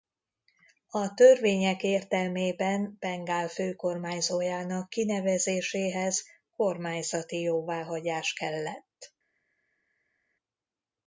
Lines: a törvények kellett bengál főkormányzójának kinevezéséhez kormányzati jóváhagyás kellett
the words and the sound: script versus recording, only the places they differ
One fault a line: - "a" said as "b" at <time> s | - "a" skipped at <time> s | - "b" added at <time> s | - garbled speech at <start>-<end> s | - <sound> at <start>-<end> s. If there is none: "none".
- "kellett" said as "értelmében" at 1.8 s